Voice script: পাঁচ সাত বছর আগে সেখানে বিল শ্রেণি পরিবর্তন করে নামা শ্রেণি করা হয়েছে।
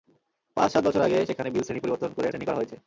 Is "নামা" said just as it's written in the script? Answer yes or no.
no